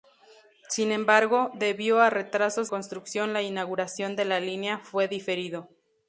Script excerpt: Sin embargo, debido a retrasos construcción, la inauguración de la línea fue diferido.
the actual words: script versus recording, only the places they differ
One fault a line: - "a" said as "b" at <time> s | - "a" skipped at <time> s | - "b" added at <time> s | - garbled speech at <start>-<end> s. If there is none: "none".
none